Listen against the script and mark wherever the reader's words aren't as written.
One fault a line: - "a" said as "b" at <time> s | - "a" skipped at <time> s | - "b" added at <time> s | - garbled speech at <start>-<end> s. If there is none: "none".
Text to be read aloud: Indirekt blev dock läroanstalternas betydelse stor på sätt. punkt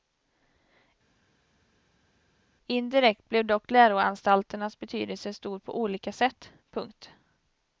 - "olika" added at 5.8 s